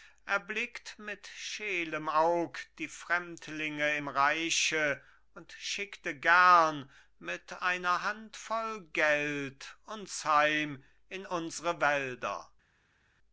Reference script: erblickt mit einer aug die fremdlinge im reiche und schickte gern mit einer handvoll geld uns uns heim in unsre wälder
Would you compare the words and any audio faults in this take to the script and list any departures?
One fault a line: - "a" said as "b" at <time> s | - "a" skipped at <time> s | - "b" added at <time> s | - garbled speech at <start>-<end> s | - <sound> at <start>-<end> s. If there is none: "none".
- "einer" said as "scheelem" at 1.3 s
- "uns" skipped at 10.2 s